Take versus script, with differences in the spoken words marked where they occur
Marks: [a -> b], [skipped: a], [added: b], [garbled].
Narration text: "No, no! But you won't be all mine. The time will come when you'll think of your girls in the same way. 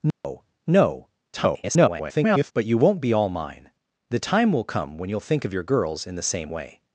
"No, no! [garbled] But you won't be all mine. The time will come when you'll think of your girls in the same way.